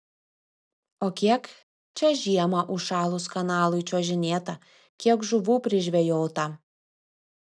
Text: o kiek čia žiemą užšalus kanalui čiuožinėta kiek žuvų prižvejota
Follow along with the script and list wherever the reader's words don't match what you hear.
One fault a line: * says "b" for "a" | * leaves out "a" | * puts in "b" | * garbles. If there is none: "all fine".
all fine